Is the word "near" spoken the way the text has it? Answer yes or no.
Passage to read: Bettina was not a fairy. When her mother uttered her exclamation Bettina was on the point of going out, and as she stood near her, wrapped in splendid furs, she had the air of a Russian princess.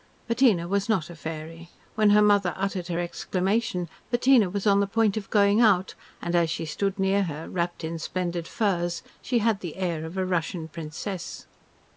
yes